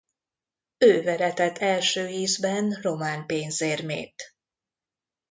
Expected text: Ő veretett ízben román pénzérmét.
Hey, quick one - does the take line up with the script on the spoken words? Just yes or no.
no